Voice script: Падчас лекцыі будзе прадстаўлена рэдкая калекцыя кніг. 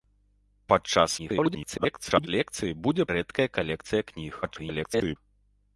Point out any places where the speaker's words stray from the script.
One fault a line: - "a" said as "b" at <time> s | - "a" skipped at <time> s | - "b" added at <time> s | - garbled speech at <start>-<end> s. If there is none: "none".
- garbled speech at 1.2-2.3 s
- "прадстаўлена" skipped at 3.0 s
- garbled speech at 4.4-5.2 s